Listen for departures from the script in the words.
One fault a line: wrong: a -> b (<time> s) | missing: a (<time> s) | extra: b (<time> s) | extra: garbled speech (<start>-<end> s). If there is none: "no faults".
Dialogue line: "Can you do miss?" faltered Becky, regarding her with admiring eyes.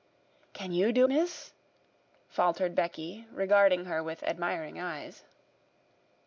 no faults